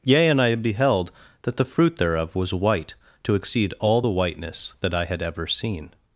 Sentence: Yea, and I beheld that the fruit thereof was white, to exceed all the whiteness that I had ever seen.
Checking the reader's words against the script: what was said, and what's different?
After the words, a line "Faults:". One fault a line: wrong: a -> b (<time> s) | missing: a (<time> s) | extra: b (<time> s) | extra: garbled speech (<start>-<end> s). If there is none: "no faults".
Yea, and I beheld that the fruit thereof was white, to exceed all the whiteness that I had ever seen.
Faults:
no faults